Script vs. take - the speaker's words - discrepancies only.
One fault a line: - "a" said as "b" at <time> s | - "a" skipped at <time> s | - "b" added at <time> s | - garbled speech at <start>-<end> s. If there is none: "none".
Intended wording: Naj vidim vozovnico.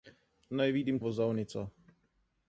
none